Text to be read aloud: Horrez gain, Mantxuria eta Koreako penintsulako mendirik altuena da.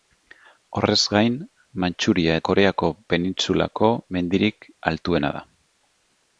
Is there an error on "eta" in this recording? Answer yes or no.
yes